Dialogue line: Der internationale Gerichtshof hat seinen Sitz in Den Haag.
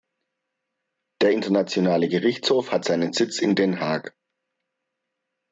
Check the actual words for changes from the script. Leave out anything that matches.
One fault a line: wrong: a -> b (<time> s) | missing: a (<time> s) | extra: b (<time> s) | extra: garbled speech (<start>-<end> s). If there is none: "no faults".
no faults